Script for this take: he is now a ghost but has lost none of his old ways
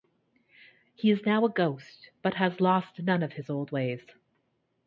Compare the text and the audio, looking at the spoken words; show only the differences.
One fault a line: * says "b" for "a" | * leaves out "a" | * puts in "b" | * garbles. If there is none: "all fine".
all fine